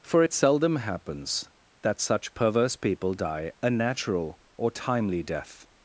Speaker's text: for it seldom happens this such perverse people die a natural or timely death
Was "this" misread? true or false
true